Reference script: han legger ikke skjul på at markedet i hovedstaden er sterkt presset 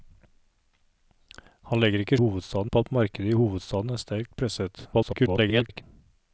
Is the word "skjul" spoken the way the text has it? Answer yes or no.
no